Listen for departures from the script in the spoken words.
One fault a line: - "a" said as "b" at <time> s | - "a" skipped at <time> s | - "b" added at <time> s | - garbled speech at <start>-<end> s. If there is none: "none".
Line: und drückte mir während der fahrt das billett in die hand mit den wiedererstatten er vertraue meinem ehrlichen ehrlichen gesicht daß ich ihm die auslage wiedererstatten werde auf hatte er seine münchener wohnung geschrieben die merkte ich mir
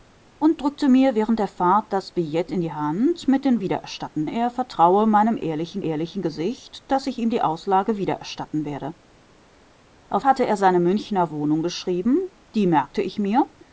none